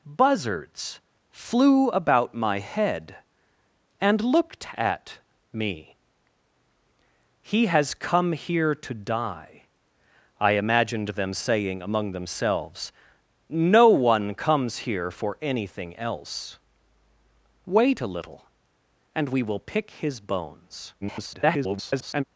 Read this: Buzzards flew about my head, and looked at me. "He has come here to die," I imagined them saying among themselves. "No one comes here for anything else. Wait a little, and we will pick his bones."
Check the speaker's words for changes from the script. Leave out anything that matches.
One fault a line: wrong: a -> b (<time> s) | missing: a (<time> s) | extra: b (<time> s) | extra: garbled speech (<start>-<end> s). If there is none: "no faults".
extra: garbled speech (21.0-22.2 s)